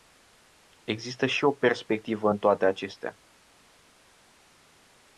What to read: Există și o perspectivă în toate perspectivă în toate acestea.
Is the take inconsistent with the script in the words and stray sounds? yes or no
yes